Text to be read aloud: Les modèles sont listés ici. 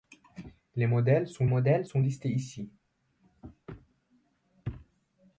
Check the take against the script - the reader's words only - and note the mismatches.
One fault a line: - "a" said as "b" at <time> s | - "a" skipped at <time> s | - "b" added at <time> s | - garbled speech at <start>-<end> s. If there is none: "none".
- "modèles sont" added at 1.5 s